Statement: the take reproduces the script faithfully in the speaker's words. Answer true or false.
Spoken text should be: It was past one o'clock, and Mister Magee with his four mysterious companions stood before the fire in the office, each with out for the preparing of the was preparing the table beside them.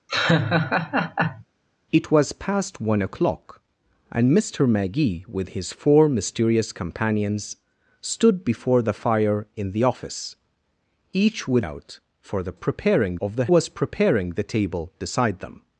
true